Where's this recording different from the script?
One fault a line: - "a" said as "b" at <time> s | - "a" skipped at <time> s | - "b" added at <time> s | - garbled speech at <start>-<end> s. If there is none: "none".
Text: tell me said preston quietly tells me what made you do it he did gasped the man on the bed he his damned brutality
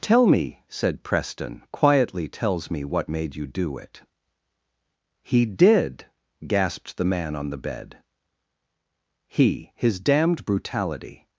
none